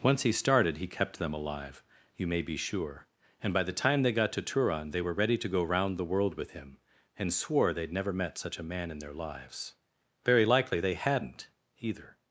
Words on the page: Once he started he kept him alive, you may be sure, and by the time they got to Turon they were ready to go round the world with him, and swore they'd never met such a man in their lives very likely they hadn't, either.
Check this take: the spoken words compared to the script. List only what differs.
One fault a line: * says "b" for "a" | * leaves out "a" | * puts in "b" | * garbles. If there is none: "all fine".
* says "them" for "him"